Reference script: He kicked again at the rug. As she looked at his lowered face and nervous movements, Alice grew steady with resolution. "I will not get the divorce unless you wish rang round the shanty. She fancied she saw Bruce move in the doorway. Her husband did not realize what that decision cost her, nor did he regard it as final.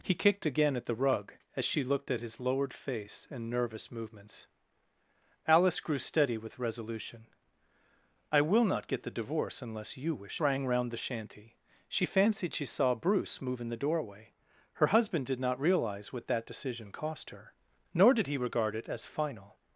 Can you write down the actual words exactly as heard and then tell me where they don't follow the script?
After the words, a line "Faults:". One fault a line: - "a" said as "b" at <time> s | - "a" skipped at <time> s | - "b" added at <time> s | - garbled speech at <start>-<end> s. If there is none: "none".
He kicked again at the rug. As she looked at his lowered face and nervous movements, Alice grew steady with resolution. "I will not get the divorce unless you wish rang round the shanty. She fancied she saw Bruce move in the doorway. Her husband did not realize what that decision cost her, nor did he regard it as final.
Faults:
none